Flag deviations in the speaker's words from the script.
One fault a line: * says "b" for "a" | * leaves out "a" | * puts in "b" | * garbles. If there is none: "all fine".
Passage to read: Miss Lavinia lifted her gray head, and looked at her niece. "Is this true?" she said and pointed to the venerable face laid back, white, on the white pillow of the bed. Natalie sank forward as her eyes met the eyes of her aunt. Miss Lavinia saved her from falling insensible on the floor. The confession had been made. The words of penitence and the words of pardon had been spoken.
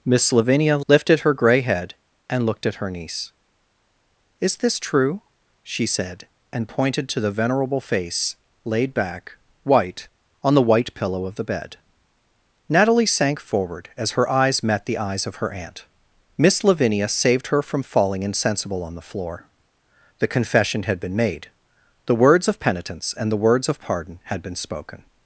all fine